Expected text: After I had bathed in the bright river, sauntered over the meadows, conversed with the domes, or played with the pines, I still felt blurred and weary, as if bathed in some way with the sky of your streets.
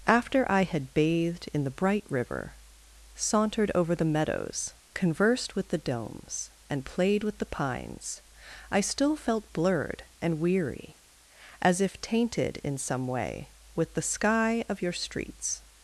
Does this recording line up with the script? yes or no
no